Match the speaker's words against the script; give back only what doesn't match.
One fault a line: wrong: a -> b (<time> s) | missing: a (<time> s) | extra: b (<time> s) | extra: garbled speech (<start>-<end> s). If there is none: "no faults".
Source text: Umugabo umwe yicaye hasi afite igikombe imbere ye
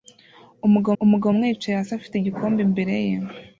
extra: umugabo (1.0 s)